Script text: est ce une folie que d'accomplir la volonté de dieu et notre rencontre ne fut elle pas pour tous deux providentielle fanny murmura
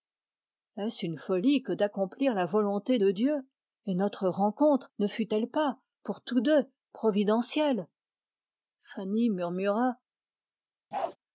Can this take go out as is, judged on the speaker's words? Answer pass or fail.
pass